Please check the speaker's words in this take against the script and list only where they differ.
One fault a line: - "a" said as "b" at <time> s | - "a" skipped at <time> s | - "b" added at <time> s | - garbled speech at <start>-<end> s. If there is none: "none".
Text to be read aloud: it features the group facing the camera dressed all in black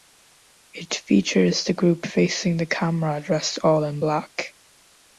none